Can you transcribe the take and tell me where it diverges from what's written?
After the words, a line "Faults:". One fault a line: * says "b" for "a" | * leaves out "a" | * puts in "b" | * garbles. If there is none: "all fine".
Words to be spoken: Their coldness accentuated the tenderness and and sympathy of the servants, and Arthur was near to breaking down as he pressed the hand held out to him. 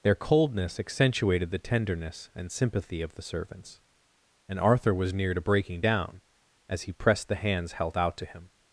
Their coldness accentuated the tenderness and sympathy of the servants, and Arthur was near to breaking down as he pressed the hands held out to him.
Faults:
* leaves out "and"
* says "hands" for "hand"